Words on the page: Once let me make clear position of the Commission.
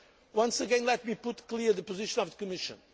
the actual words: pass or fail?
fail